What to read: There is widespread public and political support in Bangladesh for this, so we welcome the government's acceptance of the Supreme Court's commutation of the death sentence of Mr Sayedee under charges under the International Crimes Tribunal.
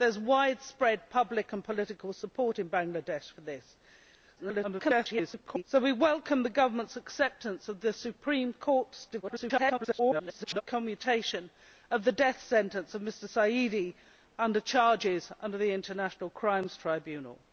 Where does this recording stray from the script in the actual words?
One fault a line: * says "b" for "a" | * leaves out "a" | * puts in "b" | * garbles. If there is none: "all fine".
* garbles
* garbles